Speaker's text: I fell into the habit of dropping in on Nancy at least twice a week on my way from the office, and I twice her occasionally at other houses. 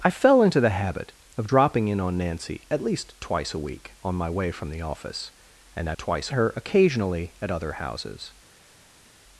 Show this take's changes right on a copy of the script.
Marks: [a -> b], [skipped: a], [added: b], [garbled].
I fell into the habit of dropping in on Nancy at least twice a week on my way from the office, and I twice her occasionally at other houses.